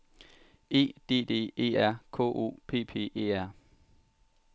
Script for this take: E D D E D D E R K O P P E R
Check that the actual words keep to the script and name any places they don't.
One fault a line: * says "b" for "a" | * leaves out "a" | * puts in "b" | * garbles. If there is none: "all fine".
* leaves out "D D E"